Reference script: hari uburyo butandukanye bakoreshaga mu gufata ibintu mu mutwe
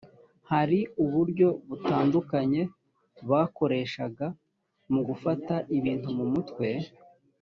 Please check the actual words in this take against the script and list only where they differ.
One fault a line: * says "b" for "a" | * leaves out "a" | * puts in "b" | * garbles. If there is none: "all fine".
all fine